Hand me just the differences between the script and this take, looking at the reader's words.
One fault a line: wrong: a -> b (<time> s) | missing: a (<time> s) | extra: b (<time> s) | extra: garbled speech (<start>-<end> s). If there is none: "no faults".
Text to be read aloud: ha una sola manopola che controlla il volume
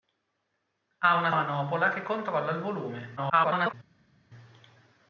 missing: sola (1.3 s)
extra: garbled speech (3.2-3.7 s)